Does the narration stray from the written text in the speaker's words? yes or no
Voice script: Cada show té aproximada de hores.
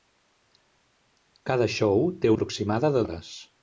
no